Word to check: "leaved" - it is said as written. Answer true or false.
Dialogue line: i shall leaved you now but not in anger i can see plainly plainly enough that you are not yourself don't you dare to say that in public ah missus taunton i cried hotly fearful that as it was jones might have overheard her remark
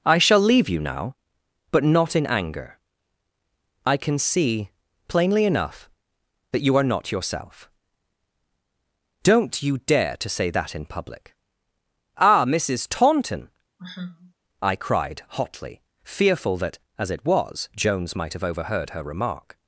false